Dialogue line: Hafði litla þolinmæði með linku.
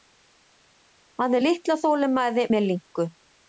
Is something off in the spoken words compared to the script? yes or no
no